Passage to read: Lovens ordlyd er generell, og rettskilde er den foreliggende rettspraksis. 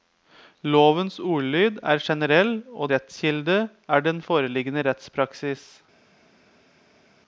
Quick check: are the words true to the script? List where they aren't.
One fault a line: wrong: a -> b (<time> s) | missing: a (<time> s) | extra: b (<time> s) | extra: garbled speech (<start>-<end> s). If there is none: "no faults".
no faults